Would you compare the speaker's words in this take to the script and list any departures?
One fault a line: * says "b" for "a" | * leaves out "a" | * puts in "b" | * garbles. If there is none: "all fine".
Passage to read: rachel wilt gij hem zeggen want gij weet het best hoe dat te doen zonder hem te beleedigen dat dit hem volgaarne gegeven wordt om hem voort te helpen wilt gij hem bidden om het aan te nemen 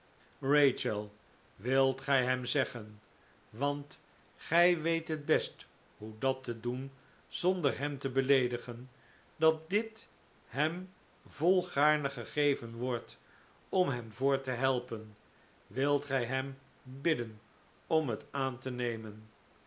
all fine